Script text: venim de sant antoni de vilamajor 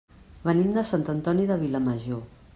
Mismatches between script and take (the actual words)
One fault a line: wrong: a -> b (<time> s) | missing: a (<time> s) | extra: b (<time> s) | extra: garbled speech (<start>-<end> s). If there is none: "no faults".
no faults